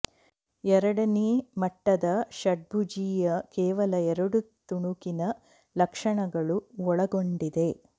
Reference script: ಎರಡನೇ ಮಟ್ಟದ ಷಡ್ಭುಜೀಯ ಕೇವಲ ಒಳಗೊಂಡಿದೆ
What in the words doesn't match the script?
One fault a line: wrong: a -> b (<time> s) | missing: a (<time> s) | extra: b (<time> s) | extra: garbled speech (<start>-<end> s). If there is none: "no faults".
extra: ಎರಡು ತುಣುಕಿನ ಲಕ್ಷಣಗಳು (4.1 s)